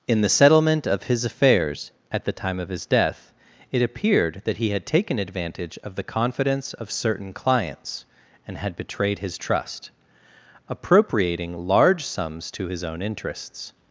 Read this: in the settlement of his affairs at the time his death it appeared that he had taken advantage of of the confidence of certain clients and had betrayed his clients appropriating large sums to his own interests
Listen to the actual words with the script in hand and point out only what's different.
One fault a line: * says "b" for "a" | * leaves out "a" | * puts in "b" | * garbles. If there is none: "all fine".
* puts in "of"
* leaves out "of"
* says "trust" for "clients"